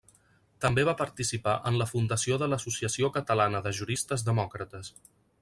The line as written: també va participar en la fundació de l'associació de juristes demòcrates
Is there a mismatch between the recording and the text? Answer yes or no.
yes